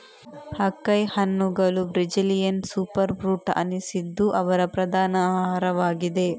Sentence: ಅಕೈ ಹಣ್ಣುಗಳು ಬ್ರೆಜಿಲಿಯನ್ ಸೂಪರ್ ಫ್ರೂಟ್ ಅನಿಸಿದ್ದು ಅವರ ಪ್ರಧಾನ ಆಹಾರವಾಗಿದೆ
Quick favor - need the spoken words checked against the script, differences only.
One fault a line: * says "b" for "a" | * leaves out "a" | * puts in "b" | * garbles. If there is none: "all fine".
all fine